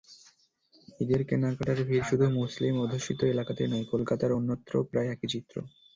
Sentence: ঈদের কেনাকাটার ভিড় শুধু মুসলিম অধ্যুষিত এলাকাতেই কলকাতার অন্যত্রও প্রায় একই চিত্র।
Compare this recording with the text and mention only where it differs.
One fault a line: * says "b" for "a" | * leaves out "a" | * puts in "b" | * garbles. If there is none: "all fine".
* puts in "নয়"